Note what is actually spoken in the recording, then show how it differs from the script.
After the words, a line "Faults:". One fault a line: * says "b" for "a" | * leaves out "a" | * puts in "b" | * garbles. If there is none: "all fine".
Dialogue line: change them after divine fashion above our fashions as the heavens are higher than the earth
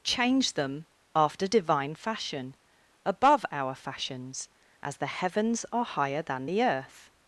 change them after divine fashion above our fashions as the heavens are higher than the earth
Faults:
all fine